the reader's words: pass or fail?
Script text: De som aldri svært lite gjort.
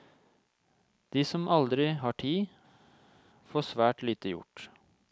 fail